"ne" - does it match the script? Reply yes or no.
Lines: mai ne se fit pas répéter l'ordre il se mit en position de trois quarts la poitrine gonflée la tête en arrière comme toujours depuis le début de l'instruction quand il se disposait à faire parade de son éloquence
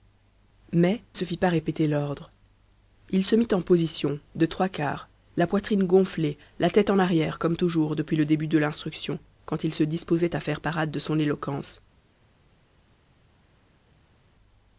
no